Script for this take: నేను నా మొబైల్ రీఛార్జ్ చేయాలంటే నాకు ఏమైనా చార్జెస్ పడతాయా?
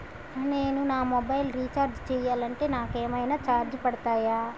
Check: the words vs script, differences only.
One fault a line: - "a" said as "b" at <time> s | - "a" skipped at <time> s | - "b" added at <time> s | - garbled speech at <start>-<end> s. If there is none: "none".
none